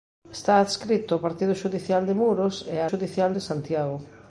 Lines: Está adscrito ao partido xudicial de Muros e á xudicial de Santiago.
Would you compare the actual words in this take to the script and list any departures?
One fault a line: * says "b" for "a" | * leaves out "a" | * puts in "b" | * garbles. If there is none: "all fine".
all fine